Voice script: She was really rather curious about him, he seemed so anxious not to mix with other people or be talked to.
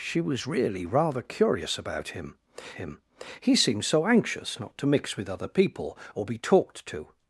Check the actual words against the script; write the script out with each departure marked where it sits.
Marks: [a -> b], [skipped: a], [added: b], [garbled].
She was really rather curious about him, [added: him] he seemed so anxious not to mix with other people or be talked to.